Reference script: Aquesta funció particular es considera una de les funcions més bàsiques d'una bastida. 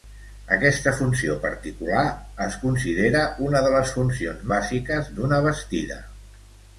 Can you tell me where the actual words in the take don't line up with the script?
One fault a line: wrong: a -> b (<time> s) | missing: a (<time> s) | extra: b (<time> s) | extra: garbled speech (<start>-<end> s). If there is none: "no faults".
missing: més (4.5 s)